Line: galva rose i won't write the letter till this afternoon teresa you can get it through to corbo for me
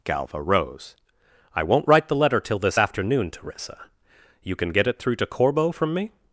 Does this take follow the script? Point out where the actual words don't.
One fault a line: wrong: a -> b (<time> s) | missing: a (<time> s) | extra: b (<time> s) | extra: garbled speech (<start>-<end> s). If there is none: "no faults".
wrong: for -> from (5.7 s)